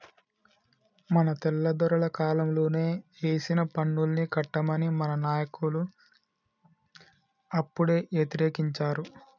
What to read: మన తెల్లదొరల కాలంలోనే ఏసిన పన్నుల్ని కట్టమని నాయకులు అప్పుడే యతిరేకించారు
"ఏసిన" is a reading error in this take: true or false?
false